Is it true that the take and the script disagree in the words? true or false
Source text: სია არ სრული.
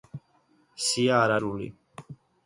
false